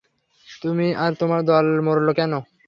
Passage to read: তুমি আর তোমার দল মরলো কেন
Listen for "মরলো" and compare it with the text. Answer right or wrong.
right